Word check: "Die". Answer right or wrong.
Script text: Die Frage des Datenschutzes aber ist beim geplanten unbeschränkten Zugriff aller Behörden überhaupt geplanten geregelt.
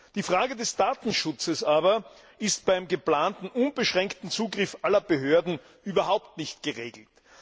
right